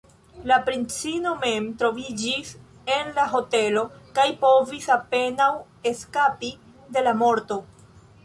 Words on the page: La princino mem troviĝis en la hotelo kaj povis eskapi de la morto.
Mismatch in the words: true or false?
true